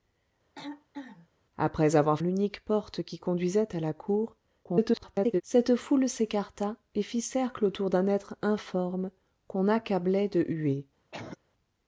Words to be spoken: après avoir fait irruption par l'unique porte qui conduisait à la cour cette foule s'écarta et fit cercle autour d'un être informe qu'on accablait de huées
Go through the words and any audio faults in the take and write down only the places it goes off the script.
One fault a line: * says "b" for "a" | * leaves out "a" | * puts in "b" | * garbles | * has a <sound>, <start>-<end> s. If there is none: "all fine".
* has a throat clearing, 0.6-1.3 s
* leaves out "fait irruption par"
* garbles
* has a cough, 11.1-11.4 s